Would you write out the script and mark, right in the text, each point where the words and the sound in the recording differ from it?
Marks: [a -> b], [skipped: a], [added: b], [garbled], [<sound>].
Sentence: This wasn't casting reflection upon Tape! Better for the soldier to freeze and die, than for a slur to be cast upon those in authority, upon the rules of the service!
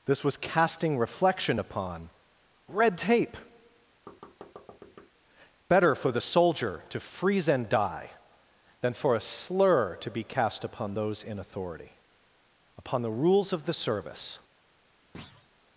This [wasn't -> was] casting reflection upon [added: Red] Tape! [thud] Better for the soldier to freeze and die, than for a slur to be cast upon those in authority, upon the rules of the service! [thud]